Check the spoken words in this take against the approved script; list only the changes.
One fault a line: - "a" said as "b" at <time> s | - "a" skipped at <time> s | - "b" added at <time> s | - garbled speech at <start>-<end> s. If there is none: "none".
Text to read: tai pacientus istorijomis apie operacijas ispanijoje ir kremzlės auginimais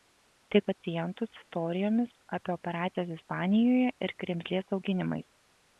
none